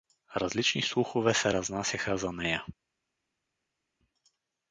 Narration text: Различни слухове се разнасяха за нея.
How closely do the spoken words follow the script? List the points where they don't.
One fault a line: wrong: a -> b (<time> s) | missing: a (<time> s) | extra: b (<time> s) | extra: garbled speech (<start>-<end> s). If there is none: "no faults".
no faults